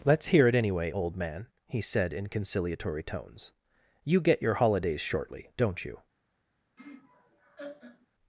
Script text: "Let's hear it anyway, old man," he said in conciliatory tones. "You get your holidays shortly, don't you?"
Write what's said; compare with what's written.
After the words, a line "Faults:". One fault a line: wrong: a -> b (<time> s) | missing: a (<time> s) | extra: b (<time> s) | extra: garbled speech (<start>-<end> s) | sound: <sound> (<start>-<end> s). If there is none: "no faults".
"Let's hear it anyway, old man," he said in conciliatory tones. "You get your holidays shortly, don't you?"
Faults:
sound: laugh (6.8-8.1 s)